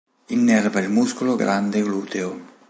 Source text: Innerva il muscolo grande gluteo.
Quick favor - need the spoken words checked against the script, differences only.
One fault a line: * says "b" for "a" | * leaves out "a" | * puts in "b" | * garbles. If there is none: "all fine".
all fine